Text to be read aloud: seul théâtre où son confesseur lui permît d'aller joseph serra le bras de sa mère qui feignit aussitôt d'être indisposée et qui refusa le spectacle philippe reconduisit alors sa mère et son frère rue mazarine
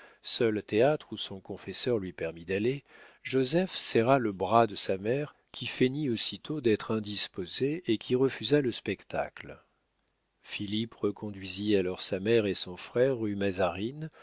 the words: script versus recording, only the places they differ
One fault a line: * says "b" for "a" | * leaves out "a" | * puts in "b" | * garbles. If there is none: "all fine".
all fine